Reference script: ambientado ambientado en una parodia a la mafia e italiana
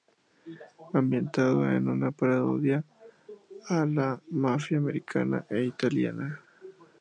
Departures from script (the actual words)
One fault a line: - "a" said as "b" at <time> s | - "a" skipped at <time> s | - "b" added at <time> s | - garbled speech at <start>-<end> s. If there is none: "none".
- "ambientado" skipped at 1.7 s
- "americana" added at 4.8 s